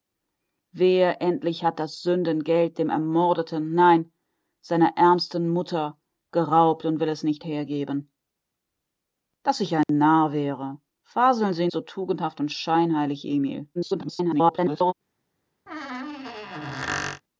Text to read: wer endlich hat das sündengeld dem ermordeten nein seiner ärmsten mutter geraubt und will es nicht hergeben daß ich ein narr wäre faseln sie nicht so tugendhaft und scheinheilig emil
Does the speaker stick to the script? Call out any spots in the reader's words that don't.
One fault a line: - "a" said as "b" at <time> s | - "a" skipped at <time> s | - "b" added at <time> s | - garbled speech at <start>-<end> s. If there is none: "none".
- "nicht" skipped at 11.7 s
- garbled speech at 13.7-14.9 s